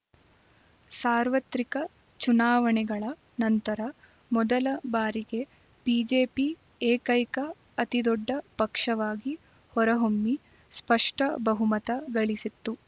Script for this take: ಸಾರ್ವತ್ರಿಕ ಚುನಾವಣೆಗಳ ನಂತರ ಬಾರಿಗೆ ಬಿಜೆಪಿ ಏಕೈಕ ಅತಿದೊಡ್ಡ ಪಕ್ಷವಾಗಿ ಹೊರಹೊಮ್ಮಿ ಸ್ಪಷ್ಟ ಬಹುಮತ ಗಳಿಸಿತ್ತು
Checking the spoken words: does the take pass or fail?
fail